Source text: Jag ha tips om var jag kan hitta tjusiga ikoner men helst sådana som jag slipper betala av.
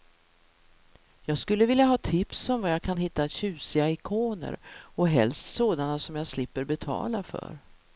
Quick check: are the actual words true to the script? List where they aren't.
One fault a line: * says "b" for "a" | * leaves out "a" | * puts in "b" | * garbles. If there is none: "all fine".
* puts in "skulle vilja"
* says "och" for "men"
* says "för" for "av"